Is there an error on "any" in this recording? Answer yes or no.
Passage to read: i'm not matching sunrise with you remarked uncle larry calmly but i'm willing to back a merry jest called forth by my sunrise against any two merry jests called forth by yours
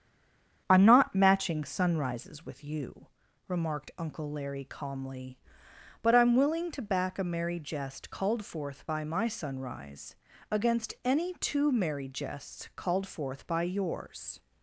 no